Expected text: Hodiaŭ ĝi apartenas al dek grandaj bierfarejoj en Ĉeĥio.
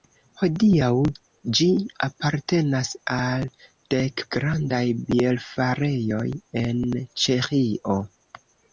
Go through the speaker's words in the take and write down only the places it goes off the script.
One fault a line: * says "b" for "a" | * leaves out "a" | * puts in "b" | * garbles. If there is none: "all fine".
all fine